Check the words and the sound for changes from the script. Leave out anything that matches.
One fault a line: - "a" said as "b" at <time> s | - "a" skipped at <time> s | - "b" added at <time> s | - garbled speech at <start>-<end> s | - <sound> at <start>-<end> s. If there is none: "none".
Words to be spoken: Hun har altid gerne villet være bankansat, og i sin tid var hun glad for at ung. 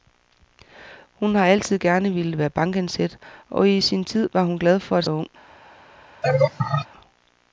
- laugh at 6.2-6.9 s